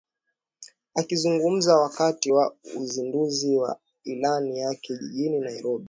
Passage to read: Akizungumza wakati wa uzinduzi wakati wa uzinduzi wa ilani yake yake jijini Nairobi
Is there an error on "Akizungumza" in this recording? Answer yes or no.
no